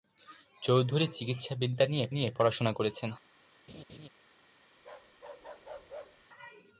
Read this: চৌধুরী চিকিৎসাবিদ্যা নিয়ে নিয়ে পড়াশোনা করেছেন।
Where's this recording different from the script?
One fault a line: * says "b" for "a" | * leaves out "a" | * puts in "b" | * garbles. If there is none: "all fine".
all fine